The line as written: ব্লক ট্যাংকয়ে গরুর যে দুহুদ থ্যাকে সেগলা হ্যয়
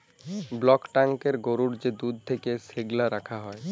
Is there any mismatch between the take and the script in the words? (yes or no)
yes